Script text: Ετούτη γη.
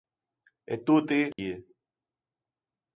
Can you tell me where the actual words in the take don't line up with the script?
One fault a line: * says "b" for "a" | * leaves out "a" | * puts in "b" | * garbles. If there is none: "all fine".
all fine